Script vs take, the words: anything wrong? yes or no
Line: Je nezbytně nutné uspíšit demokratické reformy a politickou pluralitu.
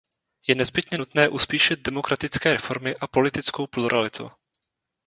no